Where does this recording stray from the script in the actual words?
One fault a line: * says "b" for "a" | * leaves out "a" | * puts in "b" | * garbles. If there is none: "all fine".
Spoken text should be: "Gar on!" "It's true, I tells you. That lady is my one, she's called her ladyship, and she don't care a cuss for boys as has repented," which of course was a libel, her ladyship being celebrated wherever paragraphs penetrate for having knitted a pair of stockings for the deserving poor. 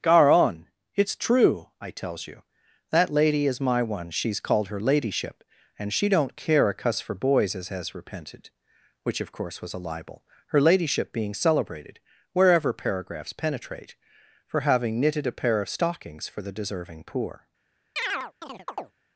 all fine